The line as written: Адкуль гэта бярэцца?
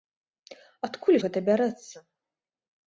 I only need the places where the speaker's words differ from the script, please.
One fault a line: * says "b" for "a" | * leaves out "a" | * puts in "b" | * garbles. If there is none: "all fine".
all fine